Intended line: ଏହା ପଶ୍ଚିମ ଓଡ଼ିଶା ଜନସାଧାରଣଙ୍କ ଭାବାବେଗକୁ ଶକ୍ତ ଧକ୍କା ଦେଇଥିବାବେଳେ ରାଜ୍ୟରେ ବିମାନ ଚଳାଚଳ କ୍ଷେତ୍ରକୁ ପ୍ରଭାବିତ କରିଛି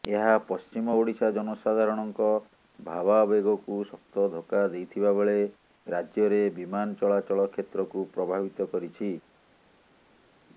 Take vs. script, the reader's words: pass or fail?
pass